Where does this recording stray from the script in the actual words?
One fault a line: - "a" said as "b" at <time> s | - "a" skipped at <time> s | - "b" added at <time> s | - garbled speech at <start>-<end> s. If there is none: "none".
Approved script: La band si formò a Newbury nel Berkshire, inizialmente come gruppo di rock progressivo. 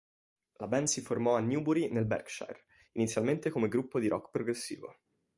none